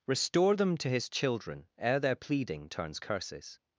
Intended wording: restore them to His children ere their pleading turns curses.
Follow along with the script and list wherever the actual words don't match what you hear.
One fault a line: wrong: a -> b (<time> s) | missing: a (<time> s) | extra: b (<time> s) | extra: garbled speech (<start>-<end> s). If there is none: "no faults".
no faults